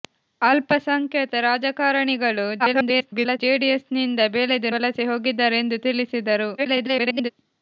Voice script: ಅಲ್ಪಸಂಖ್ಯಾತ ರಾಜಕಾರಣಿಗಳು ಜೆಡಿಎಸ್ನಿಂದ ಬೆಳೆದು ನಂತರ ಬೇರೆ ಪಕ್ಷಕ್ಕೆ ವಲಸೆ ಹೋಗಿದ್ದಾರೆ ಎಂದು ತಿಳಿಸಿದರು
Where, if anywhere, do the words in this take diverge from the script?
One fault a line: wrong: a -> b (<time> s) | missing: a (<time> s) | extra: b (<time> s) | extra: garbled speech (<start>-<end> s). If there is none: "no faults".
extra: garbled speech (2.6-3.4 s)
missing: ನಂತರ ಬೇರೆ ಪಕ್ಷಕ್ಕೆ (4.7 s)
extra: garbled speech (6.6-7.3 s)